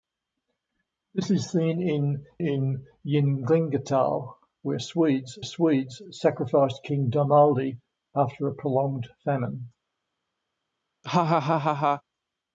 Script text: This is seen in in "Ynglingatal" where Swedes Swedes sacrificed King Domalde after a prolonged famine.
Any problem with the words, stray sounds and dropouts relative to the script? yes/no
yes